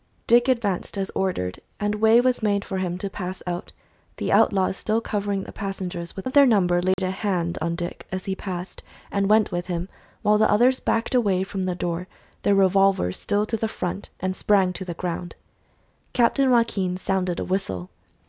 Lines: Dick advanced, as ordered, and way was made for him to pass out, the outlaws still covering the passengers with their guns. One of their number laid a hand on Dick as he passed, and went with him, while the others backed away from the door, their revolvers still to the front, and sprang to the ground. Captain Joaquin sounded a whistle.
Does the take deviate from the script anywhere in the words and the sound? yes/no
yes